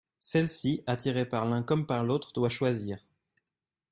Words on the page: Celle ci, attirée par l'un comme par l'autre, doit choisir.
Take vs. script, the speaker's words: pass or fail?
pass